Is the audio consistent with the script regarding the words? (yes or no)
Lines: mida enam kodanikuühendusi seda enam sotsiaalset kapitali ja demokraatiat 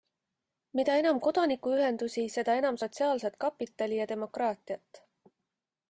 yes